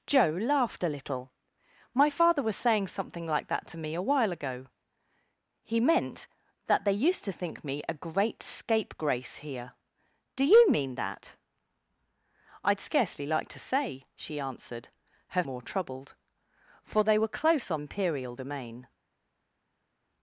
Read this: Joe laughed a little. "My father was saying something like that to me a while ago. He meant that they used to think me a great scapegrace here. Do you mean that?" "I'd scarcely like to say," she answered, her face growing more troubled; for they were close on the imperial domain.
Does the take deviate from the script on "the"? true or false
true